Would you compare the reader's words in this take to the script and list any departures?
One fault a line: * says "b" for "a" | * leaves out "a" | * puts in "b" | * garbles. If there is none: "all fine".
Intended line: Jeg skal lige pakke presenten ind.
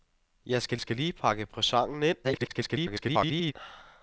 * puts in "skal"
* garbles